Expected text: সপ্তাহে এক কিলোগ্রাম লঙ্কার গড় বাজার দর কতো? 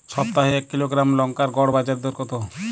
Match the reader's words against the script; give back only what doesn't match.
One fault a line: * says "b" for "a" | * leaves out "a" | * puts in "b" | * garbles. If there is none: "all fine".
all fine